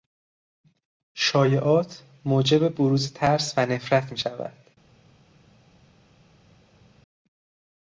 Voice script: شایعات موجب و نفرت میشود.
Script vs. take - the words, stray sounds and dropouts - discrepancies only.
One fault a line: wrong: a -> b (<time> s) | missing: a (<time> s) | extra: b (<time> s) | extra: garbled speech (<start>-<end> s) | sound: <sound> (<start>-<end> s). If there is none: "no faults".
extra: بروز ترس (2.8 s)